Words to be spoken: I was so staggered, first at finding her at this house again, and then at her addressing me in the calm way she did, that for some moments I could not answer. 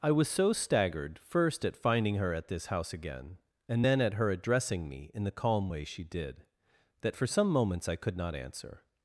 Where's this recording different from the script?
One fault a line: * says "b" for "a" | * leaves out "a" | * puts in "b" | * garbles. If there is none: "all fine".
all fine